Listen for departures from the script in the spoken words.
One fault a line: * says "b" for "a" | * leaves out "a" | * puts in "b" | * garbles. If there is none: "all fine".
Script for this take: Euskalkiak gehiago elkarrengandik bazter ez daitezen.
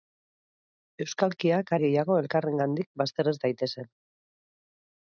all fine